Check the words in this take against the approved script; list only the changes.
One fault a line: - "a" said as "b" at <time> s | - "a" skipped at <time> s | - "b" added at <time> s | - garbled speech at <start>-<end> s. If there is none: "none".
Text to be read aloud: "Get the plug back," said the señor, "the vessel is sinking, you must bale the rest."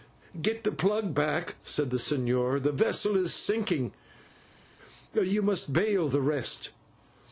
none